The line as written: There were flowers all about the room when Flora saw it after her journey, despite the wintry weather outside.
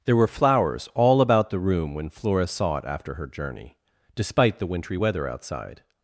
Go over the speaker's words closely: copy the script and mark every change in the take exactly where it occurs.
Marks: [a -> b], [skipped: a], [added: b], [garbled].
There were flowers all about the room when Flora saw it after her journey, despite the wintry weather outside.